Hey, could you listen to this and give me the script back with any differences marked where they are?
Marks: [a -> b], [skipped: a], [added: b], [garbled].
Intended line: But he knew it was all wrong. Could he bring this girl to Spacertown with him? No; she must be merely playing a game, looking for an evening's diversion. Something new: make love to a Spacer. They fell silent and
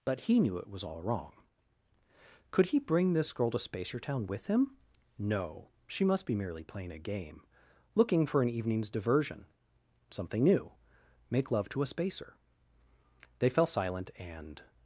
But he knew it was all wrong. Could he bring this girl to Spacertown with him? No; she must be merely playing a game, looking for an evening's diversion. Something new: make love to a Spacer. They fell silent and